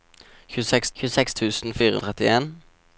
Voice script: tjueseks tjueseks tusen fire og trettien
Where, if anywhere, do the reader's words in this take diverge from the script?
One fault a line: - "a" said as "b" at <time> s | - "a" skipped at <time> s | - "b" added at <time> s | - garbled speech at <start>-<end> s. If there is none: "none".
none